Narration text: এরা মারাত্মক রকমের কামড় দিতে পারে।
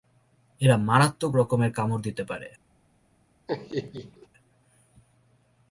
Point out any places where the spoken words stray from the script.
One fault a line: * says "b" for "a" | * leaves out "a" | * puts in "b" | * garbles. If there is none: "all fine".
all fine